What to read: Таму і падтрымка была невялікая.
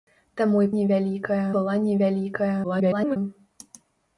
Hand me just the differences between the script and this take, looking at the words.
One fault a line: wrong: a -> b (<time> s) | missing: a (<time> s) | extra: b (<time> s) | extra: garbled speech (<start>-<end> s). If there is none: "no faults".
wrong: падтрымка -> невялікая (0.8 s)
extra: garbled speech (2.6-3.2 s)